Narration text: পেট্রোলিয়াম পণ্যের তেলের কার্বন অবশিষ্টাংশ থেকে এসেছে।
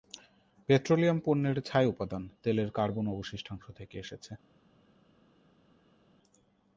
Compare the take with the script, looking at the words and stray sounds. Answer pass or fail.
fail